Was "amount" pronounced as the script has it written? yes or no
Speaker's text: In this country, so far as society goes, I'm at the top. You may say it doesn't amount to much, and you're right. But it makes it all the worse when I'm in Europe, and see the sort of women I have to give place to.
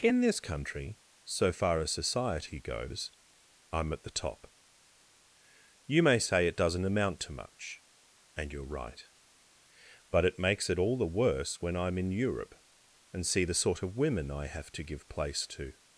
yes